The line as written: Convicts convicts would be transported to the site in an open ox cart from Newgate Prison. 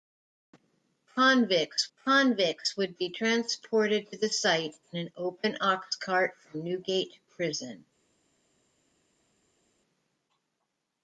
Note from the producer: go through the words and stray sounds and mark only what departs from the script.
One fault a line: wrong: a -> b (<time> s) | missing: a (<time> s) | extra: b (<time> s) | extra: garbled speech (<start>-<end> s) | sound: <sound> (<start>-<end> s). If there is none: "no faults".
no faults